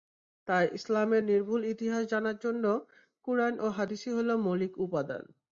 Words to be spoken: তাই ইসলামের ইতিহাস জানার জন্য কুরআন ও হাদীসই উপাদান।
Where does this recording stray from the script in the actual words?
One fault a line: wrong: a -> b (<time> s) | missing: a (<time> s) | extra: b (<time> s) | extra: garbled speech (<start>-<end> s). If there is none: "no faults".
extra: নির্ভুল (1.2 s)
extra: হলো মৌলিক (4.1 s)